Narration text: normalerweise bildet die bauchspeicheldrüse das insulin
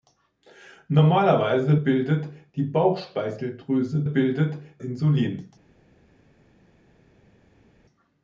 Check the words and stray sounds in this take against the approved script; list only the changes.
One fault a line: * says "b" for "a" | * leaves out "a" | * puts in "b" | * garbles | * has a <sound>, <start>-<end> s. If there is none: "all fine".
* says "bildet" for "das"